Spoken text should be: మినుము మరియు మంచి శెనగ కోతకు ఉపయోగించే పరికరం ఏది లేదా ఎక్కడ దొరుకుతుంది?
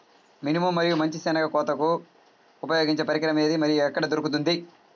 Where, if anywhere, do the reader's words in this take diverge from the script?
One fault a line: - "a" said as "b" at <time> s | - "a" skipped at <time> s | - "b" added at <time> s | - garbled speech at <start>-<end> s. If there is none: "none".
- "లేదా" said as "మరియు" at 3.6 s